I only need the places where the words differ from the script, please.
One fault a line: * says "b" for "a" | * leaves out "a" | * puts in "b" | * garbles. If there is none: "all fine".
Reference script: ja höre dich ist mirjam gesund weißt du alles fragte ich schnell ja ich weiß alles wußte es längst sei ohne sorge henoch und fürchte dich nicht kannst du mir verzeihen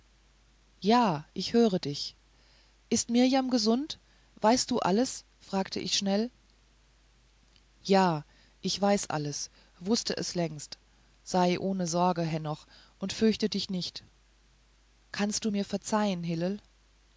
* puts in "ich"